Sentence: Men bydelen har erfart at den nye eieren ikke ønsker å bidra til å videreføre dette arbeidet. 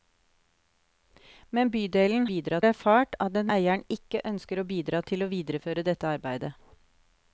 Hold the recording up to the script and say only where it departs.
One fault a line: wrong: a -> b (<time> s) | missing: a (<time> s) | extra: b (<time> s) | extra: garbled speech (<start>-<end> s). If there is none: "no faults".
wrong: har -> bidra (2.3 s)
missing: nye (3.5 s)